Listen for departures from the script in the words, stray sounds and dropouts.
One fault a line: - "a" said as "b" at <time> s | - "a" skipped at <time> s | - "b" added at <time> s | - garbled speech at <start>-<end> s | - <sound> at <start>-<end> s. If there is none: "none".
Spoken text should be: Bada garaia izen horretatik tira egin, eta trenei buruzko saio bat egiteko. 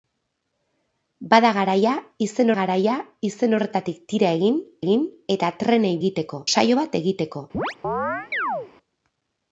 - "garaia izen" added at 2.6 s
- "egin" added at 4.8 s
- "buruzko" said as "egiteko" at 6.0 s
- chirp at 7.5-8.7 s